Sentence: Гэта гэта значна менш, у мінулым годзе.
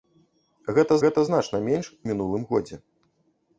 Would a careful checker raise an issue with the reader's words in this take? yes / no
no